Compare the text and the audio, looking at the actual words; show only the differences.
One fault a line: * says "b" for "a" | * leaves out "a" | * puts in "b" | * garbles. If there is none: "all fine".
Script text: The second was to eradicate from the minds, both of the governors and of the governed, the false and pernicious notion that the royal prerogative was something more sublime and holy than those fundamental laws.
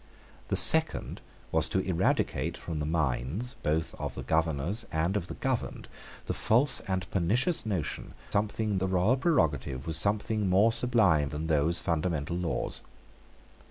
* says "something" for "that"
* leaves out "and holy"